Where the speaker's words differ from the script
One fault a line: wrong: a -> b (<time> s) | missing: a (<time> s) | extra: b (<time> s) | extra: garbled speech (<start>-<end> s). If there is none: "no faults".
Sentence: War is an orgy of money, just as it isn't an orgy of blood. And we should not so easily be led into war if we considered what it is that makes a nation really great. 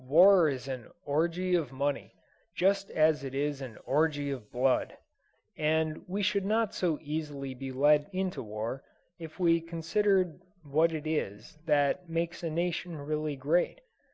wrong: isn't -> is (3.3 s)